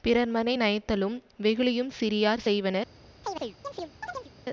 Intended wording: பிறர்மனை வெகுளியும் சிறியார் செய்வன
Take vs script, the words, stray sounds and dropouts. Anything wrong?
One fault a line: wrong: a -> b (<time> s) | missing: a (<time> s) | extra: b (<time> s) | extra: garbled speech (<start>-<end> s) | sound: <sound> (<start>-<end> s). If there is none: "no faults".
extra: நயத்தலும் (0.6 s)
sound: chirp (3.2-4.3 s)